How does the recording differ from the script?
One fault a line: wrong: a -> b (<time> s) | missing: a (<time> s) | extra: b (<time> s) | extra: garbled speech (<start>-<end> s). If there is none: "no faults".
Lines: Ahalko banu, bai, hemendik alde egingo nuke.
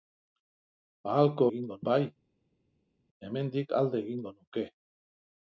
wrong: banu -> egingo (1.5 s)